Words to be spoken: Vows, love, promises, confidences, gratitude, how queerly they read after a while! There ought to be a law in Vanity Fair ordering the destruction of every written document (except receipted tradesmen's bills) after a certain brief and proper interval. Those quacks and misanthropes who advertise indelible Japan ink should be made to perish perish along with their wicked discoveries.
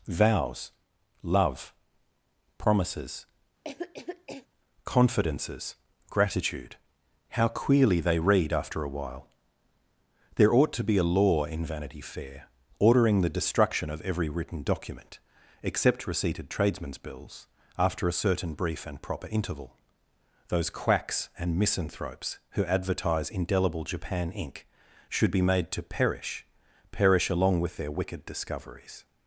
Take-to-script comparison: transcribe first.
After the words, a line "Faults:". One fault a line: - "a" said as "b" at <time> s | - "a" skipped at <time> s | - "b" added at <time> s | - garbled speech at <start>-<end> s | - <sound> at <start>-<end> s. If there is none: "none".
Vows, love, promises, confidences, gratitude, how queerly they read after a while! There ought to be a law in Vanity Fair ordering the destruction of every written document (except receipted tradesmen's bills) after a certain brief and proper interval. Those quacks and misanthropes who advertise indelible Japan ink should be made to perish perish along with their wicked discoveries.
Faults:
- cough at 3.6-4.5 s